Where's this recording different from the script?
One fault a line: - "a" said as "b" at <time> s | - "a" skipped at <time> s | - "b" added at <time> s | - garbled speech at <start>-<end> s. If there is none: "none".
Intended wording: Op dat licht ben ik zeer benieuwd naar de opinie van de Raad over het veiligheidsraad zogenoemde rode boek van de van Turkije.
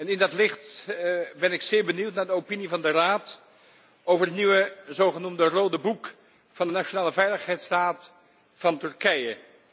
- "Op" said as "In" at 0.1 s
- "veiligheidsraad" said as "nieuwe" at 4.3 s
- "nationale veiligheidsraad" added at 6.7 s